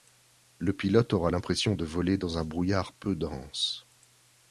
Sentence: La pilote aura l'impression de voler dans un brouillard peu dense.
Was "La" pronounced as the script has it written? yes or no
no